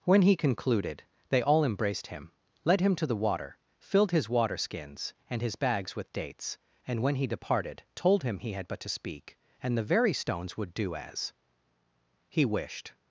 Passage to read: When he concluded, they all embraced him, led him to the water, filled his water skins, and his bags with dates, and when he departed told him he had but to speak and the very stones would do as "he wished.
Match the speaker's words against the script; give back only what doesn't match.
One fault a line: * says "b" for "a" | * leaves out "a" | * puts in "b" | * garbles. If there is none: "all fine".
all fine